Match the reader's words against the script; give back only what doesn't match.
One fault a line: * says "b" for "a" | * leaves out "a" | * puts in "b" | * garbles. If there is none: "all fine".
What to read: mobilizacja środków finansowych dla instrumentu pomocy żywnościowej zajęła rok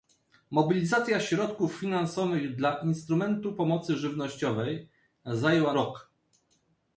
all fine